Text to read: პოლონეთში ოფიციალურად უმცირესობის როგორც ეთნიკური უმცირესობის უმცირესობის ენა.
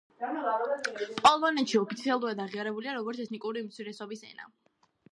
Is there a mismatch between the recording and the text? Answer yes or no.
yes